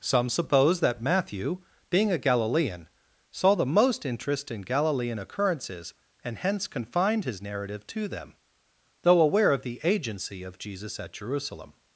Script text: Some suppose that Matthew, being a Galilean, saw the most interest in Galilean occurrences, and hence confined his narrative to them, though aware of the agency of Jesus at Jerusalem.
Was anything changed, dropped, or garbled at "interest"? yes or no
no